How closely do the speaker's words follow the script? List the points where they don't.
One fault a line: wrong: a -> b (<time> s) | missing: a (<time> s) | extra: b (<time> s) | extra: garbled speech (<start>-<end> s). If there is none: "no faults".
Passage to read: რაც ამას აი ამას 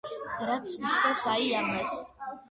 wrong: ამას -> ნიშნავს (0.8 s)